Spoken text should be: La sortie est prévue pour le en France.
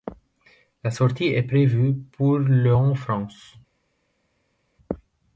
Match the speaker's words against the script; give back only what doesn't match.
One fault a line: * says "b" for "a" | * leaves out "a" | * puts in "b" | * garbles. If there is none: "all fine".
all fine